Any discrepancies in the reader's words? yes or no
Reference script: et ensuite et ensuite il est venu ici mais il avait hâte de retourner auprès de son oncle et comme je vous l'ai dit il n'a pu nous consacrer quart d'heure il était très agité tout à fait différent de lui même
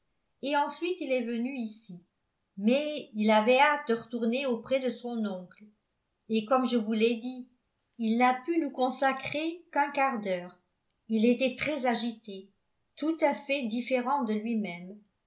yes